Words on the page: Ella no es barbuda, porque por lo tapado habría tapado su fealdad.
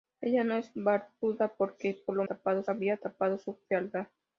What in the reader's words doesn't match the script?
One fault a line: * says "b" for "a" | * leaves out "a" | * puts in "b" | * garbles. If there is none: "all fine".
all fine